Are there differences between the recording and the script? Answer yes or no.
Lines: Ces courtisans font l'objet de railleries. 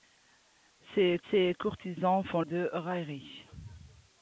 yes